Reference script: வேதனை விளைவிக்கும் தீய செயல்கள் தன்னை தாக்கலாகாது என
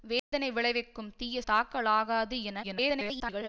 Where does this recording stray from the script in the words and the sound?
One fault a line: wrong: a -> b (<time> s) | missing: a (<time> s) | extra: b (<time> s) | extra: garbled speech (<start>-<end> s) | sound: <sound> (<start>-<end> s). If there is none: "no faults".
sound: dropout (0.2-0.3 s)
missing: செயல்கள் தன்னை (1.4 s)
extra: garbled speech (2.6-3.5 s)